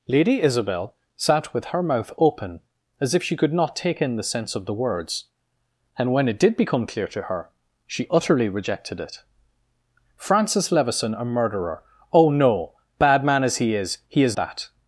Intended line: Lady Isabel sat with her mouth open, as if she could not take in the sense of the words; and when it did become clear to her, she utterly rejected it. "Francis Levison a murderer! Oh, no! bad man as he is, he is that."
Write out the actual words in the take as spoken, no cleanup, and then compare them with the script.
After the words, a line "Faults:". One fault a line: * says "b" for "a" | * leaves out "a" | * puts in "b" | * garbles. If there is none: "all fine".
Lady Isabel sat with her mouth open, as if she could not take in the sense of the words; and when it did become clear to her, she utterly rejected it. "Francis Levison a murderer! Oh, no! bad man as he is, he is that."
Faults:
all fine